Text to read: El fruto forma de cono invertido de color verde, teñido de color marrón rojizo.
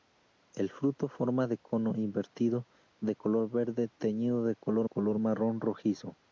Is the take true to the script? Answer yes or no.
no